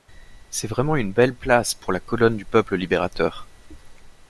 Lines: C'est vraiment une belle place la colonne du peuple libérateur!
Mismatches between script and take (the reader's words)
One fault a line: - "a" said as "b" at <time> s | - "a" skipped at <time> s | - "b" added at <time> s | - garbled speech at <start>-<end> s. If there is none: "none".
- "pour" added at 1.8 s